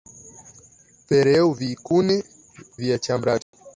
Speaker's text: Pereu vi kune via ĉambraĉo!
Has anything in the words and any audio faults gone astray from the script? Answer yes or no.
yes